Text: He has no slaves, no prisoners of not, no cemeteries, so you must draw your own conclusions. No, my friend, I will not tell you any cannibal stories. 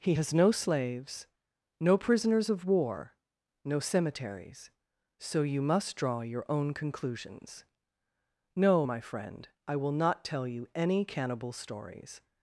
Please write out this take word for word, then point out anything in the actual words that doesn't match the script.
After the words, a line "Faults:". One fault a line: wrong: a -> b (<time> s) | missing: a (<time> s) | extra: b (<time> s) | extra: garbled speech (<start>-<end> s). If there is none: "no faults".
He has no slaves, no prisoners of war, no cemeteries, so you must draw your own conclusions. No, my friend, I will not tell you any cannibal stories.
Faults:
wrong: not -> war (2.6 s)